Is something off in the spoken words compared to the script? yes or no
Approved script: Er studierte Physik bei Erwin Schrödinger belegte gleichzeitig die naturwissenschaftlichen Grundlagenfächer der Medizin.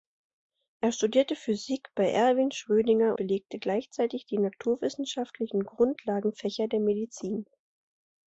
no